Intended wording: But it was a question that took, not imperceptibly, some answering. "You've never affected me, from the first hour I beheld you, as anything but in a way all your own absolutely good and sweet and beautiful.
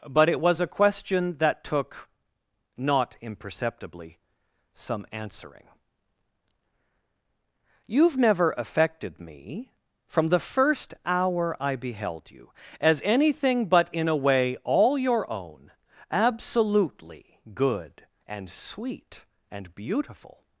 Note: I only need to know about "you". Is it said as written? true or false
true